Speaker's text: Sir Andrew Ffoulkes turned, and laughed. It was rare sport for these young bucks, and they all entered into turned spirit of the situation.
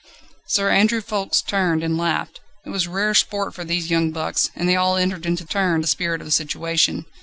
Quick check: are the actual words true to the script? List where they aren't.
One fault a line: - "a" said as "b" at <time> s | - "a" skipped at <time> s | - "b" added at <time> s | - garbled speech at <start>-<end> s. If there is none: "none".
none